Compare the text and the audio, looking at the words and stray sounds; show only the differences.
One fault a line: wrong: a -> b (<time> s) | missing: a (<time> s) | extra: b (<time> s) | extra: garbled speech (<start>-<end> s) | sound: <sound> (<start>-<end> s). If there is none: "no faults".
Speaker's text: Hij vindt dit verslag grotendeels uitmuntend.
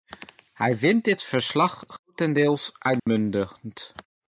sound: dropout (3.0-3.1 s)